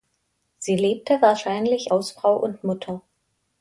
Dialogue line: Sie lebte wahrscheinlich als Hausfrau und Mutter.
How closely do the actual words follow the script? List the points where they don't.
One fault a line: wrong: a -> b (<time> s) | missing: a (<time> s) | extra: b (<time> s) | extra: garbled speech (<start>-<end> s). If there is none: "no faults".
missing: als (1.9 s)